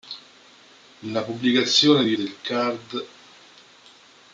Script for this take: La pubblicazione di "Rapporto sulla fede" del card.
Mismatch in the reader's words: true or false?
true